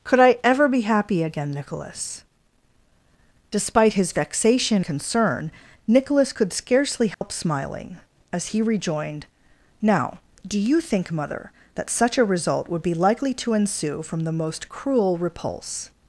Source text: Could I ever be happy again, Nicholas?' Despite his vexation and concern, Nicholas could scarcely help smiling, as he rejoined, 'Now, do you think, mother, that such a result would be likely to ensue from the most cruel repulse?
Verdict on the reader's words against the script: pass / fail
fail